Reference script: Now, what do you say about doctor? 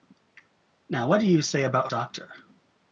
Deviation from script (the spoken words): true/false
false